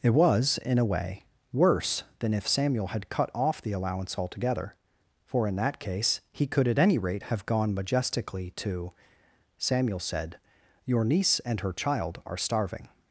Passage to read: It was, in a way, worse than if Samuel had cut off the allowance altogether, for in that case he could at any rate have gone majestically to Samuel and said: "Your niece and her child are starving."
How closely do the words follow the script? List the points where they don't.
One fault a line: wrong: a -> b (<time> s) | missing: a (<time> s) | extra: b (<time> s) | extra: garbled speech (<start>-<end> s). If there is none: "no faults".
missing: and (10.0 s)